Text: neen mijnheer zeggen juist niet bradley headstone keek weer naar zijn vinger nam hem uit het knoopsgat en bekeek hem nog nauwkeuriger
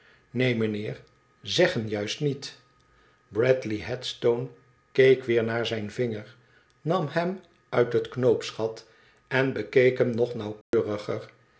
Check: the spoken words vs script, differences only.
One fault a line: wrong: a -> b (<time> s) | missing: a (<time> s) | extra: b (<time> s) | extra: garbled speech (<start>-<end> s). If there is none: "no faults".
no faults